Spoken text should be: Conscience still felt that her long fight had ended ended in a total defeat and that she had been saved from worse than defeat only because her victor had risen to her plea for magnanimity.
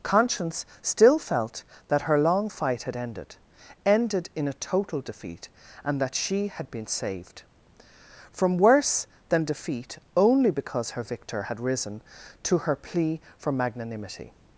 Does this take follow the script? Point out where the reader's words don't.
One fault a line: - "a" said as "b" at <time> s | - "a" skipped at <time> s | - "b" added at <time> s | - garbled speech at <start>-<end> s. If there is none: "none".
none